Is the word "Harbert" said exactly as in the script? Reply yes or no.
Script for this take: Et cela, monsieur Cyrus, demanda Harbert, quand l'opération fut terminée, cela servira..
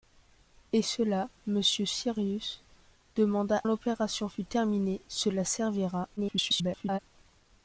no